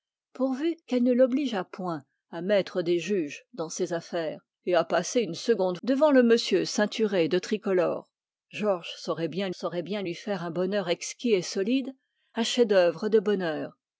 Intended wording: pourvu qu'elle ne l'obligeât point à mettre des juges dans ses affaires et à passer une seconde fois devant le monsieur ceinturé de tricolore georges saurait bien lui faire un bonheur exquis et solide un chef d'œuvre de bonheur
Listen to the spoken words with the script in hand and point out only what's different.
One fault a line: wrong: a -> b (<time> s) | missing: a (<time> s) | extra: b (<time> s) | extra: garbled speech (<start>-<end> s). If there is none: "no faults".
missing: fois (5.8 s)
extra: saurait bien (9.5 s)